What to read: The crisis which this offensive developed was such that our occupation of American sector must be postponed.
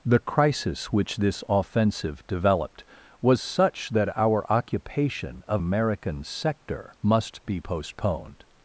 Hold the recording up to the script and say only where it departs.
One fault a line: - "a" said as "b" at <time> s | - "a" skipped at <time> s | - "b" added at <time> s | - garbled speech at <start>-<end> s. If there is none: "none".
none